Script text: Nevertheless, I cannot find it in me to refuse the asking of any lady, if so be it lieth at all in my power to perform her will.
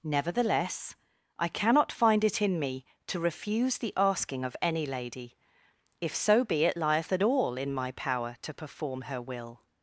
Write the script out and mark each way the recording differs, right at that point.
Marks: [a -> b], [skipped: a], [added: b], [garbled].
Nevertheless, I cannot find it in me to refuse the asking of any lady, if so be it lieth at all in my power to perform her will.